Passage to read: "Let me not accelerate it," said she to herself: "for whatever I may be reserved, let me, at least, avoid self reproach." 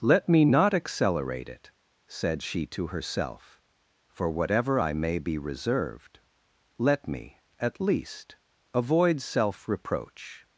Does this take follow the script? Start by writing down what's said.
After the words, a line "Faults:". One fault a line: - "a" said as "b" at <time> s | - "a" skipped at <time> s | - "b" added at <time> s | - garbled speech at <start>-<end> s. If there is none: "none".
"Let me not accelerate it," said she to herself: "for whatever I may be reserved, let me, at least, avoid self reproach."
Faults:
none